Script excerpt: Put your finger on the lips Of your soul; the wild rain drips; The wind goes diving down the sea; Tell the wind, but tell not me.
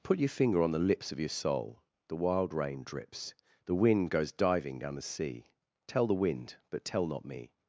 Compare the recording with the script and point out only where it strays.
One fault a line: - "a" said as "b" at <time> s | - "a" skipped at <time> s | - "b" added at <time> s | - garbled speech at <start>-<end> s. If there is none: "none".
none